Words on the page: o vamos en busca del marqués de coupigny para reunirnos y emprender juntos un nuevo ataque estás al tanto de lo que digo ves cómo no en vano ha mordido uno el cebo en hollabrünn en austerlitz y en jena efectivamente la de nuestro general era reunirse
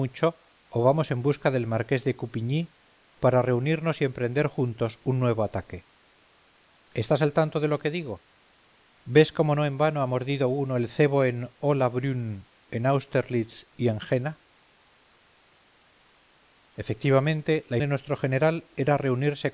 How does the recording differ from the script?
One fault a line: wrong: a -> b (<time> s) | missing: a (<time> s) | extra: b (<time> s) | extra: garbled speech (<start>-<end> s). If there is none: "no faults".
no faults